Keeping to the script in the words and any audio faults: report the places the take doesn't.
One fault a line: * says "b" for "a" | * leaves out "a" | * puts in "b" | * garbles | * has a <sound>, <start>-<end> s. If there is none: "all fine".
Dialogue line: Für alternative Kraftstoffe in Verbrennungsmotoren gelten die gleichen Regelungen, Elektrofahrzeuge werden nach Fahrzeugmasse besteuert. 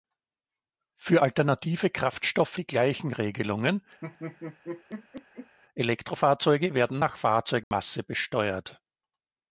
* leaves out "in Verbrennungsmotoren gelten"
* has a laugh, 4.0-5.6 s
* has a dropout, 7.6-7.7 s